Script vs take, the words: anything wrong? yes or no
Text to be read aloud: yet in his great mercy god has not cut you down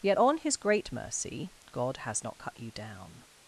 yes